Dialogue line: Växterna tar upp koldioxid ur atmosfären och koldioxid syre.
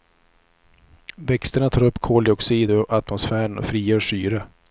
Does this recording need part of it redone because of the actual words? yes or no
yes